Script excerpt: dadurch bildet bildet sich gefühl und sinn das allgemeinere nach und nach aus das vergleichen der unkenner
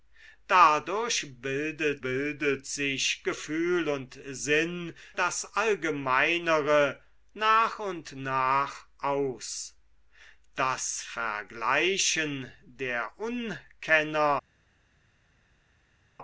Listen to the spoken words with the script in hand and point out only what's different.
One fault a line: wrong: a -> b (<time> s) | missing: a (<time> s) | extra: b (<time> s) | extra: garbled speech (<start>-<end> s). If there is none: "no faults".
no faults